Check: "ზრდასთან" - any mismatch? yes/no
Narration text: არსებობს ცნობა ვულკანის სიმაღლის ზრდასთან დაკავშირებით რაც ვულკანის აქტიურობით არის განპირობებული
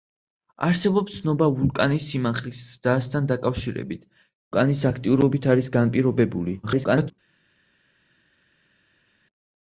no